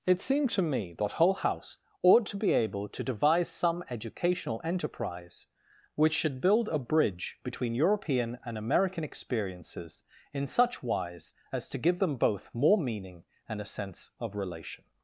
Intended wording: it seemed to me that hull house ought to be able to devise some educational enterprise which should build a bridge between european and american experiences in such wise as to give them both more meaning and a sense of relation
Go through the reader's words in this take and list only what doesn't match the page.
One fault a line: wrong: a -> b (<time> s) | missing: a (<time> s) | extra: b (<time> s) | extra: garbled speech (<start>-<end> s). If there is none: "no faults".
no faults